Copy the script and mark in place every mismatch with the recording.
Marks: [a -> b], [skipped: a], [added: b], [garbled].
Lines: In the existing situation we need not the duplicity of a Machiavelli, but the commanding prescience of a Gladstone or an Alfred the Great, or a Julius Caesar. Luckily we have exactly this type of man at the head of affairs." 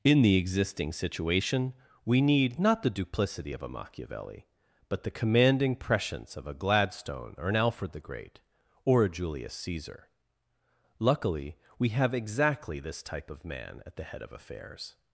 In the existing situation we need not the duplicity of a Machiavelli, but the commanding prescience of a Gladstone or an Alfred the Great, or a Julius Caesar. Luckily we have exactly this type of man at the head of affairs."